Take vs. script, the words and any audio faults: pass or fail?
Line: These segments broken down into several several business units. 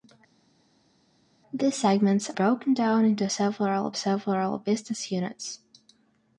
pass